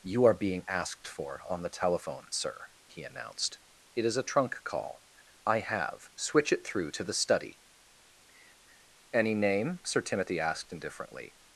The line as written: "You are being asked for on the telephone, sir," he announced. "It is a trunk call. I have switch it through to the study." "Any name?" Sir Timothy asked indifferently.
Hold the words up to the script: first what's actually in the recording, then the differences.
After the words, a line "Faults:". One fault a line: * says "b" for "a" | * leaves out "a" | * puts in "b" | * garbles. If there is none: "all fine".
"You are being asked for on the telephone, sir," he announced. "It is a trunk call. I have switch it through to the study." "Any name?" Sir Timothy asked indifferently.
Faults:
all fine